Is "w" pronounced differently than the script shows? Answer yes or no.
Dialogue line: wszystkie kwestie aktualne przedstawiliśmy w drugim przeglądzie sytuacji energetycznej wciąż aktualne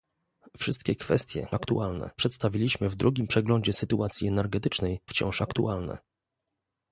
no